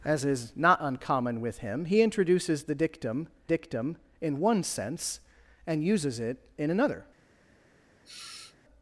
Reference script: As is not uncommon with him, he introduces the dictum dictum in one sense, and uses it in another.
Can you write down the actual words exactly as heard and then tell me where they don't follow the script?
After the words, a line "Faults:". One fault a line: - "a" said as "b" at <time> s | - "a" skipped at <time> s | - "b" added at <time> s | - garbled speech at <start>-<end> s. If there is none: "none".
As is not uncommon with him, he introduces the dictum dictum in one sense, and uses it in another.
Faults:
none